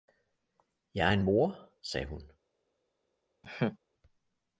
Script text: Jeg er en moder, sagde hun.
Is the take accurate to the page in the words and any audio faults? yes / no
no